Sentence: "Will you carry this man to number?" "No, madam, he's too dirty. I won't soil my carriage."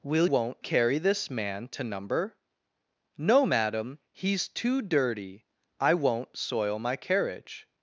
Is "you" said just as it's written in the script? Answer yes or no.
no